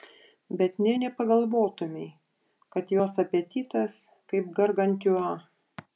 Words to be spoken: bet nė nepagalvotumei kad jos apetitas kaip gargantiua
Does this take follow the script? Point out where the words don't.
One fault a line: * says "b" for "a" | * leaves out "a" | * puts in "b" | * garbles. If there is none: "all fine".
all fine